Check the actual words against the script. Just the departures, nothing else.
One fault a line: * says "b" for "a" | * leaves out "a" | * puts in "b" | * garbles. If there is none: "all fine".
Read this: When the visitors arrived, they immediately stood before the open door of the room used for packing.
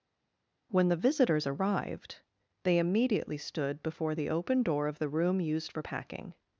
all fine